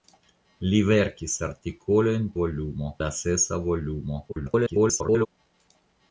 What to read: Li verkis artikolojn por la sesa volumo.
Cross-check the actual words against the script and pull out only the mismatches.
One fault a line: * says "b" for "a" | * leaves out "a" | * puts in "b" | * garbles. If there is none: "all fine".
* says "volumo" for "por"
* garbles